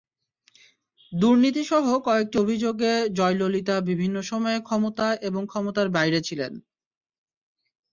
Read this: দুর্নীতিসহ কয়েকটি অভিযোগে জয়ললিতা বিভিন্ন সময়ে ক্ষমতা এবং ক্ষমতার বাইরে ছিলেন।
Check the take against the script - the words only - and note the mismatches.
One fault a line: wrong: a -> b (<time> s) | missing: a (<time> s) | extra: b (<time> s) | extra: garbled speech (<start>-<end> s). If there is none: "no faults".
no faults